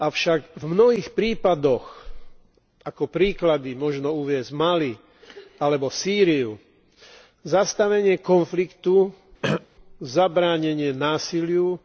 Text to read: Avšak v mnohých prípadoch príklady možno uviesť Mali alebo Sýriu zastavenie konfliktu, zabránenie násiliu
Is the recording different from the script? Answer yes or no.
yes